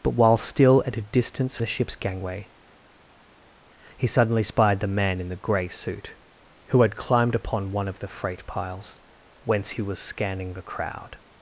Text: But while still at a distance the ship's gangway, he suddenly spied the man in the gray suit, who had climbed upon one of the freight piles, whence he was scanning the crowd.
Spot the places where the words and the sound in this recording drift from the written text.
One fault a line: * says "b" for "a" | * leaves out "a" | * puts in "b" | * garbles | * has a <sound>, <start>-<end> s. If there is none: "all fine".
all fine